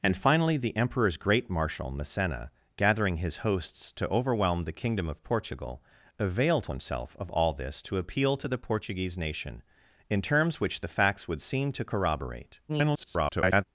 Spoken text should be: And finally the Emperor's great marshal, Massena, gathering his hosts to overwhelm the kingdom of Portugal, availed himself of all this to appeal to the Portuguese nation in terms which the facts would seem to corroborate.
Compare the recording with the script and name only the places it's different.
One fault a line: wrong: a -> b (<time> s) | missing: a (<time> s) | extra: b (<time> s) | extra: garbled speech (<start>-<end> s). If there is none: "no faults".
extra: garbled speech (12.7-13.6 s)